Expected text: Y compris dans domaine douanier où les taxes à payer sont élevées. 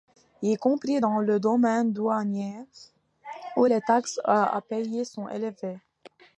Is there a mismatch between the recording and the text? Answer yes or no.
yes